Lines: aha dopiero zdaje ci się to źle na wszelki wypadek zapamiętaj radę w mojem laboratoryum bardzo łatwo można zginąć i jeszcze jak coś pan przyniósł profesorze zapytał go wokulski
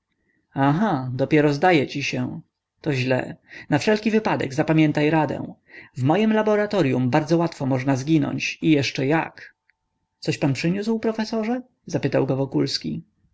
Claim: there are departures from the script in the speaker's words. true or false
false